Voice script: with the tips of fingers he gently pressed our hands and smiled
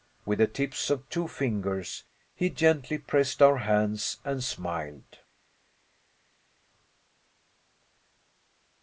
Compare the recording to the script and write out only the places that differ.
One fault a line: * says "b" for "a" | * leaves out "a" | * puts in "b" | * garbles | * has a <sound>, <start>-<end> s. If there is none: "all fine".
* puts in "two"